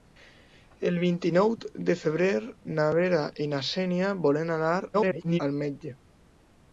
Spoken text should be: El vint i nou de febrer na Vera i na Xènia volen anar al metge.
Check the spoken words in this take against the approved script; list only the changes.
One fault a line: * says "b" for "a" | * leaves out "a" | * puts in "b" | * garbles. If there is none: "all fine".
* garbles